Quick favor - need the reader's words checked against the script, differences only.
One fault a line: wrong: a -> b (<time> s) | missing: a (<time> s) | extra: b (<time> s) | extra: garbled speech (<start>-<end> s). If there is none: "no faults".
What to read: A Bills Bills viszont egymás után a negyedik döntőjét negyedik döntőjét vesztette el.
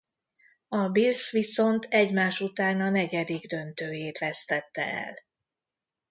missing: Bills (1.3 s)
missing: negyedik döntőjét (4.2 s)